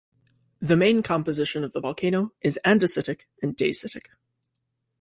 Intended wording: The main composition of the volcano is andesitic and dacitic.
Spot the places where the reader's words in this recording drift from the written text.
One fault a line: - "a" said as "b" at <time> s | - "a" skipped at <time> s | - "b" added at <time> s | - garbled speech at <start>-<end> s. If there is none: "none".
none